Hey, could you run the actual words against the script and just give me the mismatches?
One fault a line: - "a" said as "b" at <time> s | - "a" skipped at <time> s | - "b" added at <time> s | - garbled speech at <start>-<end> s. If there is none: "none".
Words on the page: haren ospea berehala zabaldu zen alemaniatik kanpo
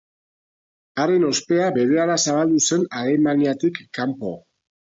none